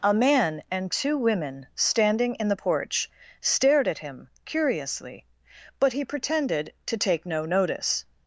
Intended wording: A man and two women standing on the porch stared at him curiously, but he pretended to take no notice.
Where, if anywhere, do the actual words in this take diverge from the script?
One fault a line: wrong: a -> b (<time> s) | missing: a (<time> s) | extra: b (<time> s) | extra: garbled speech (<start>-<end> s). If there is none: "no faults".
wrong: on -> in (2.4 s)